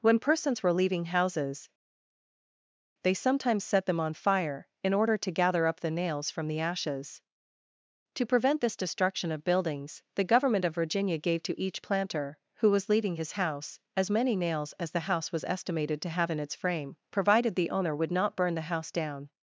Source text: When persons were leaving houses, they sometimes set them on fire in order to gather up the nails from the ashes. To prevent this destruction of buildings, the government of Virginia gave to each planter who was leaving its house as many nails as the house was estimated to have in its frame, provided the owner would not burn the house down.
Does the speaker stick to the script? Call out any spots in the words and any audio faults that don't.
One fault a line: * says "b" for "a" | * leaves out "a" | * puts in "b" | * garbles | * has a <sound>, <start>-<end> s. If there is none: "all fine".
* says "his" for "its"